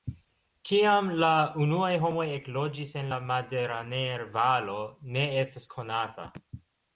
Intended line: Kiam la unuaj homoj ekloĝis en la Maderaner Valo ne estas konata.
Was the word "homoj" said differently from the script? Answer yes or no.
no